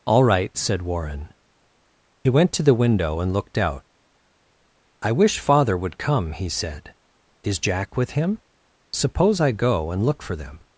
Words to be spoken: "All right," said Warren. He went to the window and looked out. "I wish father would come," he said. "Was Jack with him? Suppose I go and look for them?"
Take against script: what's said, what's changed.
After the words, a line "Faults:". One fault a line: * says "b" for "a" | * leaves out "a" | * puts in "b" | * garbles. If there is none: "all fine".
"All right," said Warren. He went to the window and looked out. "I wish father would come," he said. "Is Jack with him? Suppose I go and look for them?"
Faults:
* says "Is" for "Was"